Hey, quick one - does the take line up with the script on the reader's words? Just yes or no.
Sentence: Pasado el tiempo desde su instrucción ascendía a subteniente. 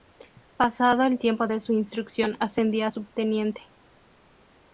no